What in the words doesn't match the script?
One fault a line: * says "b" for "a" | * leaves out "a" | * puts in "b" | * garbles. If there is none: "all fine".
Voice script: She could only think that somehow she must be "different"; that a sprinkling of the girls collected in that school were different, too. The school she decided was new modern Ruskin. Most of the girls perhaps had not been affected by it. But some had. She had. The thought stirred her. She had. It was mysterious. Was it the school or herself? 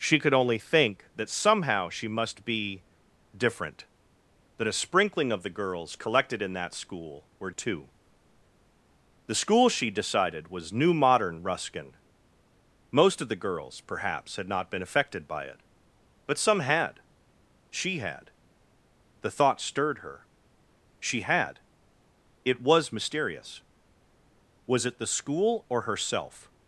* leaves out "different"